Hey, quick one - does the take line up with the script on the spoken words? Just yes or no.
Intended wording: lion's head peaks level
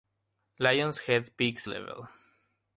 yes